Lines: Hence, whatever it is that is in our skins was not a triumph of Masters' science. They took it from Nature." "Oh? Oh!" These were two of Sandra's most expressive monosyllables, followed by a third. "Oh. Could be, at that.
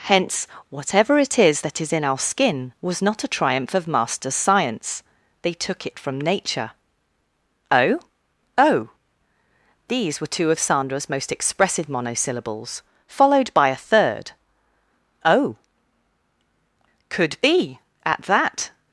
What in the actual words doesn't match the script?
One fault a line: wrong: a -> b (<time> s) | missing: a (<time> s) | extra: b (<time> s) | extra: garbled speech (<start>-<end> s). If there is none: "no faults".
wrong: skins -> skin (2.2 s)